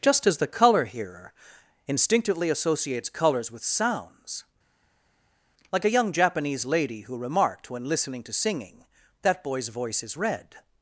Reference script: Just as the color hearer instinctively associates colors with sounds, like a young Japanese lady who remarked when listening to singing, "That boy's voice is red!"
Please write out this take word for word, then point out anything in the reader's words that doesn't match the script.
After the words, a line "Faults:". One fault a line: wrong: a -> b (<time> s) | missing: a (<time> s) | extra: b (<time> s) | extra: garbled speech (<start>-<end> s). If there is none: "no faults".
Just as the color hearer instinctively associates colors with sounds, like a young Japanese lady who remarked when listening to singing, "That boy's voice is red!"
Faults:
no faults